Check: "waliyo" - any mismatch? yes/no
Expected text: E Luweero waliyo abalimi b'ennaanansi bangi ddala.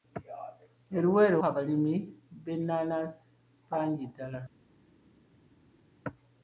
yes